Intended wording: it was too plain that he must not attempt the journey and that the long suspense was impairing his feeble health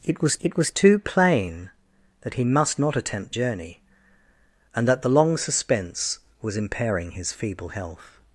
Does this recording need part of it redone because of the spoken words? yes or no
yes